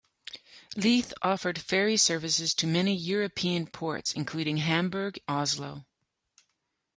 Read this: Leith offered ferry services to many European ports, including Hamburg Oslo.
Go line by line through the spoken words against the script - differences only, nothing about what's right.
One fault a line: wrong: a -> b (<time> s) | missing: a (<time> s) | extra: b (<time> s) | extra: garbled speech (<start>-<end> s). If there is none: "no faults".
no faults